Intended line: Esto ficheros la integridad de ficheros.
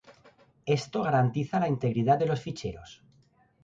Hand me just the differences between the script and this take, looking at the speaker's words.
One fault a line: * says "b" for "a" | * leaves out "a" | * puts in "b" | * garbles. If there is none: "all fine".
* says "garantiza" for "ficheros"
* puts in "los"